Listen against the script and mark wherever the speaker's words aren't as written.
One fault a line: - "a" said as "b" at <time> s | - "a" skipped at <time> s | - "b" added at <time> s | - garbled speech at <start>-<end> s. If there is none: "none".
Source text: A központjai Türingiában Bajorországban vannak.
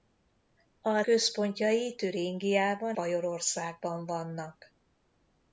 none